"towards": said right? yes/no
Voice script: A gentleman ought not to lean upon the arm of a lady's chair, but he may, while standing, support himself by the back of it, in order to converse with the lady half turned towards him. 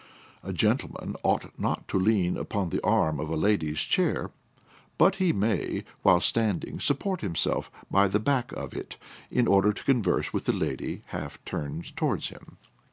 yes